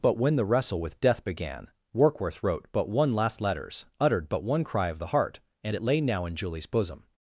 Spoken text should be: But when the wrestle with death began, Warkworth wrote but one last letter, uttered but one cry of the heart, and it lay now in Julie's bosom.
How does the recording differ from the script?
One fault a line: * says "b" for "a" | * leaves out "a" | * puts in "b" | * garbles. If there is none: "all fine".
* says "letters" for "letter"